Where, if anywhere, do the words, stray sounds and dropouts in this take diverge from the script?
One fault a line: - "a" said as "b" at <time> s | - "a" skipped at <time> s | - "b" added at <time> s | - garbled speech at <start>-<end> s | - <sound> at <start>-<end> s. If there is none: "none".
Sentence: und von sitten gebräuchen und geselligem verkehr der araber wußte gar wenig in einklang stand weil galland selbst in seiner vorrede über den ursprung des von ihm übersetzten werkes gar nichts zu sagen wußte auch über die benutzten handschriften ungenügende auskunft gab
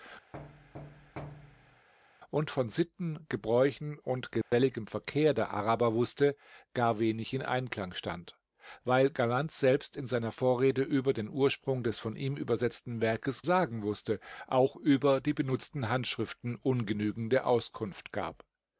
- thud at 0.3-1.9 s
- dropout at 4.4-4.5 s
- "gar nichts zu" skipped at 13.5 s